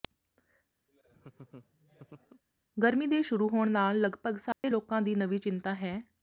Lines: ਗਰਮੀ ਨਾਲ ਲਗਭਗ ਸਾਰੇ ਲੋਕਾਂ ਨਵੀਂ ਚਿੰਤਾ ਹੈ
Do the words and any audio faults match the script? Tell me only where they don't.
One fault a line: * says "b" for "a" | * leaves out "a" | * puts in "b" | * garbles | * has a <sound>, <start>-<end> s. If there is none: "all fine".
* has a laugh, 0.9-2.4 s
* puts in "ਦੇ ਸ਼ੁਰੂ ਹੋਣ"
* has a dropout, 4.5-4.6 s
* puts in "ਦੀ"